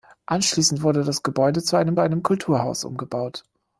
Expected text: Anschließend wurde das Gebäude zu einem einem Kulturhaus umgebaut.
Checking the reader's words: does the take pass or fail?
pass